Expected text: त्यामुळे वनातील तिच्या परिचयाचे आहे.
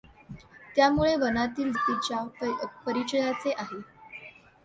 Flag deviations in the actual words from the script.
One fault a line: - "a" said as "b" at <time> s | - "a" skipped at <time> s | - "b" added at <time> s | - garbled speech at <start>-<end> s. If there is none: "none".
none